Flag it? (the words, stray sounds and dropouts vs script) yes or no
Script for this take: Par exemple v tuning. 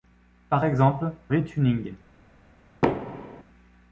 yes